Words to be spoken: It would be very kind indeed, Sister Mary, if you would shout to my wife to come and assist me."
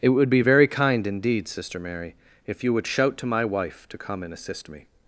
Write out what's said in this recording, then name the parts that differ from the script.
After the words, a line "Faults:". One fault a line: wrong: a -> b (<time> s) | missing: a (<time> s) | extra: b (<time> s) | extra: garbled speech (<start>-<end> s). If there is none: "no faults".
It would be very kind indeed, Sister Mary, if you would shout to my wife to come and assist me."
Faults:
no faults